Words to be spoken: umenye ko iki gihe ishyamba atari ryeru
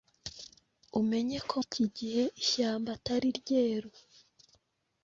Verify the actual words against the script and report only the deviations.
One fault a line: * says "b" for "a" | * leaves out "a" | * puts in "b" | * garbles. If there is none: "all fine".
all fine